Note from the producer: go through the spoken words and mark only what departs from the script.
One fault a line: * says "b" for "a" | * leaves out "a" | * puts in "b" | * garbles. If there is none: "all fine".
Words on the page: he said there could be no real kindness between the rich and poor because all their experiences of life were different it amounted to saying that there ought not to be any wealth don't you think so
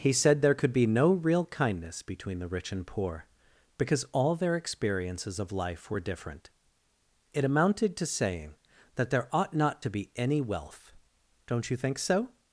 all fine